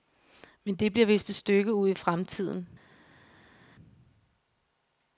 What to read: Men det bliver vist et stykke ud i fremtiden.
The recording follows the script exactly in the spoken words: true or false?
true